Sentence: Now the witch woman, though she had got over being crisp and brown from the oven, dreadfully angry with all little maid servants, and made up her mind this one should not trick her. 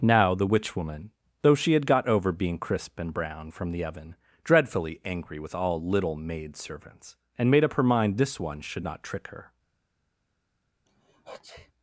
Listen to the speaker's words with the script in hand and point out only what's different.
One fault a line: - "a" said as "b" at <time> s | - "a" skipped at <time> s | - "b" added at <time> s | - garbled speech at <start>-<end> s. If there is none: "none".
none